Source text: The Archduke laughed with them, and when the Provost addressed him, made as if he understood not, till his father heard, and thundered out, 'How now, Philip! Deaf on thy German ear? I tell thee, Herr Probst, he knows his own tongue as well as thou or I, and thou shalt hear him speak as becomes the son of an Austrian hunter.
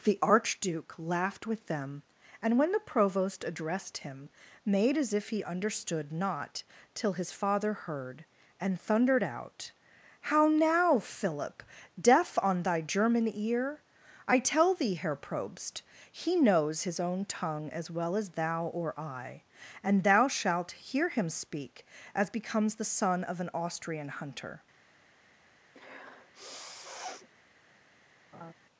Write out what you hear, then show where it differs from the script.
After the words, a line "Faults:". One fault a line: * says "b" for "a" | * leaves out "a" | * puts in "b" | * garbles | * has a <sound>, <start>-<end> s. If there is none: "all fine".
The Archduke laughed with them, and when the Provost addressed him, made as if he understood not, till his father heard, and thundered out, 'How now, Philip! Deaf on thy German ear? I tell thee, Herr Probst, he knows his own tongue as well as thou or I, and thou shalt hear him speak as becomes the son of an Austrian hunter.
Faults:
* has a sniff, 25.7-27.3 s
* has a laugh, 28.3-28.5 s